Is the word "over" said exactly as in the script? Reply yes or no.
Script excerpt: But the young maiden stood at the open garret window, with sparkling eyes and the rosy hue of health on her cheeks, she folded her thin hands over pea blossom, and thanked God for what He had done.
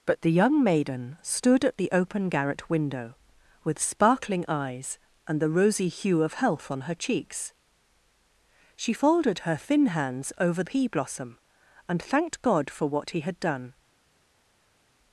yes